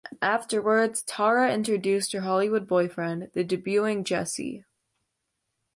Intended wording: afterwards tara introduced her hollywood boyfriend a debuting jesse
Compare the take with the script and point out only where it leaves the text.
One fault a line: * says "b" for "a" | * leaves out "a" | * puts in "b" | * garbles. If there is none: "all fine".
* says "the" for "a"